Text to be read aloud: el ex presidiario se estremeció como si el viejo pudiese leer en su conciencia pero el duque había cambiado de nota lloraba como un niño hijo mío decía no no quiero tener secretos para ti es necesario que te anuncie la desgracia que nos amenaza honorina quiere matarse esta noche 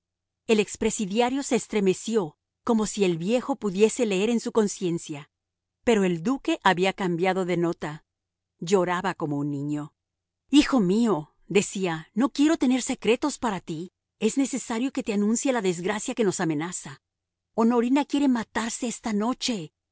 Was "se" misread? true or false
false